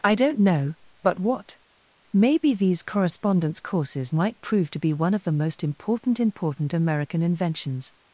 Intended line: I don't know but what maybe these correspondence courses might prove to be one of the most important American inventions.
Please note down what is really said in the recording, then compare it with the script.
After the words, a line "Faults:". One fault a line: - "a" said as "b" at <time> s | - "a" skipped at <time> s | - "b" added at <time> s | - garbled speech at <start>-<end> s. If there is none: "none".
I don't know but what maybe these correspondence courses might prove to be one of the most important important American inventions.
Faults:
- "important" added at 6.2 s